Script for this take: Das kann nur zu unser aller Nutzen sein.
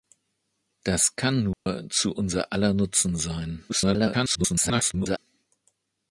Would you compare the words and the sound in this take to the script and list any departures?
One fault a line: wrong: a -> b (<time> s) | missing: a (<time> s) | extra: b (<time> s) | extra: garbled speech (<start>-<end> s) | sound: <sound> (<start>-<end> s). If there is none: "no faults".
sound: dropout (1.5-1.7 s)
extra: garbled speech (3.7-5.2 s)